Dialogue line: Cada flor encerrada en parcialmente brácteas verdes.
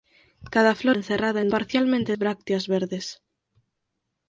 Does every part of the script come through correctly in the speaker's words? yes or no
yes